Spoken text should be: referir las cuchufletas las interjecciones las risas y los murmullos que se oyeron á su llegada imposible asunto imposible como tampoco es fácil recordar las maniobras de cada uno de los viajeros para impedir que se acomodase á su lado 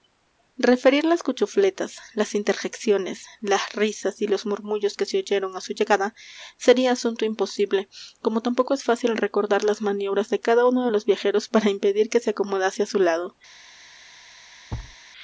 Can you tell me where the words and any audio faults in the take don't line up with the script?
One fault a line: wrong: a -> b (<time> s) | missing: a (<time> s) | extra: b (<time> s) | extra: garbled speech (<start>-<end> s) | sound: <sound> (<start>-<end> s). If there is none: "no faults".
wrong: imposible -> sería (6.6 s)
sound: thud (14.7-15.0 s)